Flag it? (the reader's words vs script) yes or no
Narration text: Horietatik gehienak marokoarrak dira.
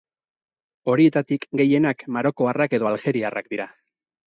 yes